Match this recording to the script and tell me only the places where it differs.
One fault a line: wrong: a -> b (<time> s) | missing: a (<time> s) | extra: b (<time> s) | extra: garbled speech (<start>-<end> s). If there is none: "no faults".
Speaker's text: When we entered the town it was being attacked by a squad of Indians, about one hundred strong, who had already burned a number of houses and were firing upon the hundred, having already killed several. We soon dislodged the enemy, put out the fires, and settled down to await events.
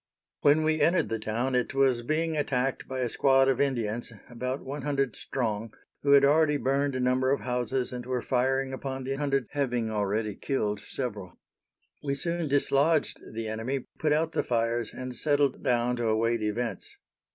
no faults